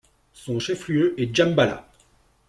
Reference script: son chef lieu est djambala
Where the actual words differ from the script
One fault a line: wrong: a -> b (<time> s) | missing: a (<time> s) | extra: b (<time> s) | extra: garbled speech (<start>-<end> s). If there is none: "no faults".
no faults